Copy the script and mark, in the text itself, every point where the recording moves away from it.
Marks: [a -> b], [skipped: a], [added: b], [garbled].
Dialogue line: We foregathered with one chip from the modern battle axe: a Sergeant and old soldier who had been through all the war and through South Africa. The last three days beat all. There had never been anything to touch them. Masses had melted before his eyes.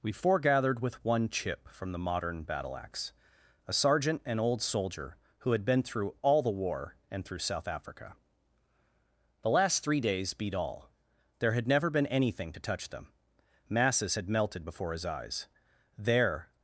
We foregathered with one chip from the modern battle axe: a Sergeant and old soldier who had been through all the war and through South Africa. The last three days beat all. There had never been anything to touch them. Masses had melted before his eyes. [added: There]